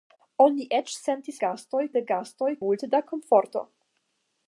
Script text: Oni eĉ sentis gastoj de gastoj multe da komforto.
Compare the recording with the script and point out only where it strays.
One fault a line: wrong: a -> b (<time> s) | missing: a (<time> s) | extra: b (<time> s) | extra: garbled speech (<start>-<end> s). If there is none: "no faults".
no faults